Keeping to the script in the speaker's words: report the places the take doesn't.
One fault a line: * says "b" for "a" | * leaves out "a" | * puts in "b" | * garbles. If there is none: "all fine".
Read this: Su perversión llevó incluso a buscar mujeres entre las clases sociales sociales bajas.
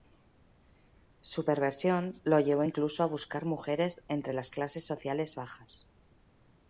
* puts in "lo"
* leaves out "sociales"